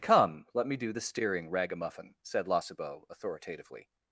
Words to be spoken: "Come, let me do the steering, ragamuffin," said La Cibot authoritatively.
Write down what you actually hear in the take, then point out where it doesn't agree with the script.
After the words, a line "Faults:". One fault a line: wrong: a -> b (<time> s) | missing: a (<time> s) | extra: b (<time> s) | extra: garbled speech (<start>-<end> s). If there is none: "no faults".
"Come, let me do the steering, ragamuffin," said La Cibot authoritatively.
Faults:
no faults